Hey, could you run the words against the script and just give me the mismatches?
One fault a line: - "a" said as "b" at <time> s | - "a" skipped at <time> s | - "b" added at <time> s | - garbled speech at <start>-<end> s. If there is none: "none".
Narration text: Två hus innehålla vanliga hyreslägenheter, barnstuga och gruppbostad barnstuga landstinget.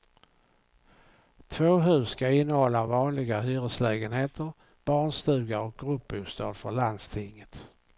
- "ska" added at 2.1 s
- "barnstuga" said as "för" at 6.5 s